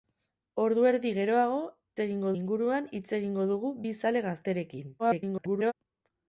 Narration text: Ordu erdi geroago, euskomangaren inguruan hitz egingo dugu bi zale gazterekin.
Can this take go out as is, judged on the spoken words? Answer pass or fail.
fail